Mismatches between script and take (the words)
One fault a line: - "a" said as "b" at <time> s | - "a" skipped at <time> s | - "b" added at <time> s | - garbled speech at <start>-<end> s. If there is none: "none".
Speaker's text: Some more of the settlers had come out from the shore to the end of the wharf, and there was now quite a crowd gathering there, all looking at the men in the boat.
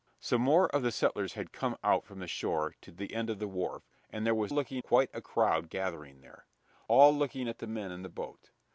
- "now" said as "looking" at 4.5 s